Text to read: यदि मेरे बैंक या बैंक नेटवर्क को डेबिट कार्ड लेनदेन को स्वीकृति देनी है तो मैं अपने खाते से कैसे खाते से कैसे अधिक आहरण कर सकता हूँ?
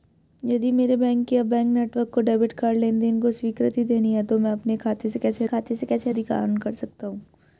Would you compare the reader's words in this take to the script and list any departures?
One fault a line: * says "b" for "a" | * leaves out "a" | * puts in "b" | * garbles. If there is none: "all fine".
all fine